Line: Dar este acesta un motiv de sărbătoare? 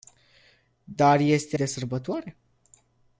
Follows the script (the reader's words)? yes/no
no